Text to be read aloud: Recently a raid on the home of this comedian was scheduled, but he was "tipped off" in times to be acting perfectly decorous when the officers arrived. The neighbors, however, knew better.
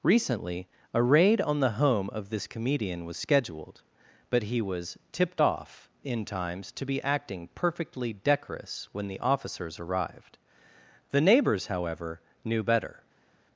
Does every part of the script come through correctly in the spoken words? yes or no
yes